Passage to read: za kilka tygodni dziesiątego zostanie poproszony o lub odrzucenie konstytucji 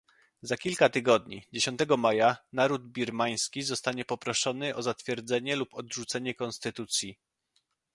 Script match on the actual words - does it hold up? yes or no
no